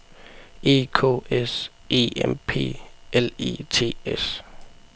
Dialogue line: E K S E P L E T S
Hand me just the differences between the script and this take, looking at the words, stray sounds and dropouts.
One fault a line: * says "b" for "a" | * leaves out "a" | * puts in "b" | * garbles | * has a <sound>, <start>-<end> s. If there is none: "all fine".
* puts in "M"